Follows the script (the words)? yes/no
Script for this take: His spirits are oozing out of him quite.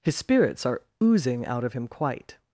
yes